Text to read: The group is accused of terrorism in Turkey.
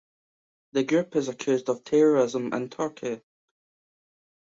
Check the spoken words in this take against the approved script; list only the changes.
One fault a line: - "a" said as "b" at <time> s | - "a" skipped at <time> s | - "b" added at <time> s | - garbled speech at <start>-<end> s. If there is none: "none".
none